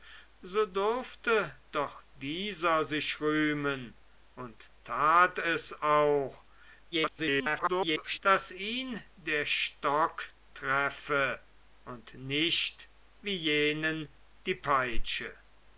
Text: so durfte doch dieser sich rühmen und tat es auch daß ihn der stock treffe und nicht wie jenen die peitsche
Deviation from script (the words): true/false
true